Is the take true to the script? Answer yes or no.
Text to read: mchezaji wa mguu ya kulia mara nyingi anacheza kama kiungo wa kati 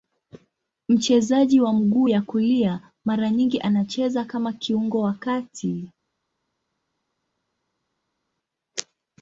yes